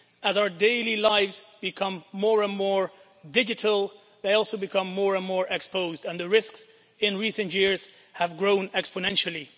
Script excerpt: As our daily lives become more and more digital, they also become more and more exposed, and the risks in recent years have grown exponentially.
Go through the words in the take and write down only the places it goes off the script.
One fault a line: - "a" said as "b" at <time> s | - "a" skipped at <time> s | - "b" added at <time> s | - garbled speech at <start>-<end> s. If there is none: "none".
none